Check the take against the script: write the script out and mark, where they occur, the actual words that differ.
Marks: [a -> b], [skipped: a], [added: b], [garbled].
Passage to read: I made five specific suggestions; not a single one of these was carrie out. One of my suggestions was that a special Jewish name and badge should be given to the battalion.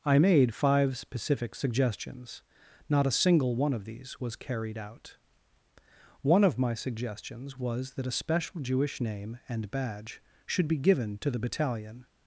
I made five specific suggestions; not a single one of these was [carrie -> carried] out. One of my suggestions was that a special Jewish name and badge should be given to the battalion.